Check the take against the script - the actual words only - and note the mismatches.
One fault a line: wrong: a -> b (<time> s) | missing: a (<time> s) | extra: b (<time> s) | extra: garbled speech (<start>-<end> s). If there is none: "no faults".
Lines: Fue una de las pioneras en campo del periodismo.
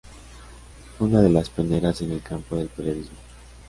extra: el (2.1 s)